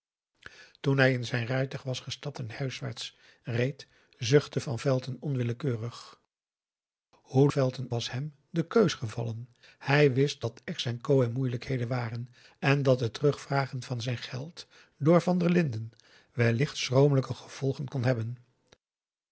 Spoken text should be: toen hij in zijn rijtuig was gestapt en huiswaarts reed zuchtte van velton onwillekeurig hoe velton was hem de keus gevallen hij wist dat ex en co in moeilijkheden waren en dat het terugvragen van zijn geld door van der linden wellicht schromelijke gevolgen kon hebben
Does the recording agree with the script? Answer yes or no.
yes